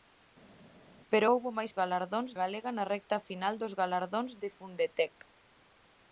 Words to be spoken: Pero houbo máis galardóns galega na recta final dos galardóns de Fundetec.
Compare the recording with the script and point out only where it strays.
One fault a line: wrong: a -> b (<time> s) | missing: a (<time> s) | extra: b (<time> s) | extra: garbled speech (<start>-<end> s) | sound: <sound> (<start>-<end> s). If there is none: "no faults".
no faults